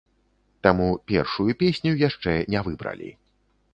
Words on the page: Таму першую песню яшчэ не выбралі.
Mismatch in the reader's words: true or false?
false